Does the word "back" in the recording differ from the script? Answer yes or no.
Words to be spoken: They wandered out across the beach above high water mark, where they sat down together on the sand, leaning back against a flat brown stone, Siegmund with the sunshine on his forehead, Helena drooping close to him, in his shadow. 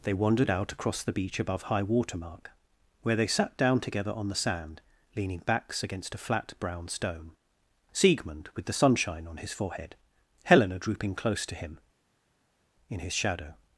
yes